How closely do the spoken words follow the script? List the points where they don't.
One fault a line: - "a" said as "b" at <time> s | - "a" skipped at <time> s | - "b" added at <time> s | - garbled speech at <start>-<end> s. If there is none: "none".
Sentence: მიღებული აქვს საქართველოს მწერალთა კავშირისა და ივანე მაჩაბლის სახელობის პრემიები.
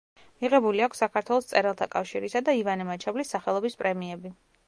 none